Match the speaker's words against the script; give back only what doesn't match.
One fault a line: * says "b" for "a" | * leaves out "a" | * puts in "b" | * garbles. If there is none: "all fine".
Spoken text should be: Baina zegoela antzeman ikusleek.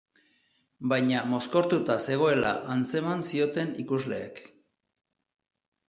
* puts in "mozkortuta"
* puts in "zioten"